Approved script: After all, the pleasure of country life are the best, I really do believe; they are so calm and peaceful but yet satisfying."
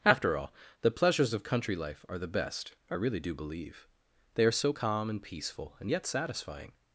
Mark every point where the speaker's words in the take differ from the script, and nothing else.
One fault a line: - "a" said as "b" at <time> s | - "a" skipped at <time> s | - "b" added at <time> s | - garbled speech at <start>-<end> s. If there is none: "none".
- "pleasure" said as "pleasures" at 0.9 s
- "but" said as "and" at 5.8 s